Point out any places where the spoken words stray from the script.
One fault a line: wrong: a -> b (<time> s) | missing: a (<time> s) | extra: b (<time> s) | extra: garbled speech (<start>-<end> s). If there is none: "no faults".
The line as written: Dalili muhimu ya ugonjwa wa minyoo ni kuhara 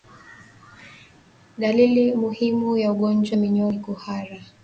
no faults